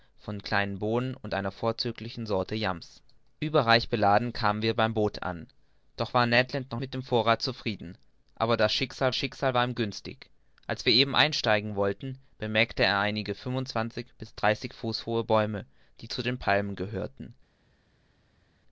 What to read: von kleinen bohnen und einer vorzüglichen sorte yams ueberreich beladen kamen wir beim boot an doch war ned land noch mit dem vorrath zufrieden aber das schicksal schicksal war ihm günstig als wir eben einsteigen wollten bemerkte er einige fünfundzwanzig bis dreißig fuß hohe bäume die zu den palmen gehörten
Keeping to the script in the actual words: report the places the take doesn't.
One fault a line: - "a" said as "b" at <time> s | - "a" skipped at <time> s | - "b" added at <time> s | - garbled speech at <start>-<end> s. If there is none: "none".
none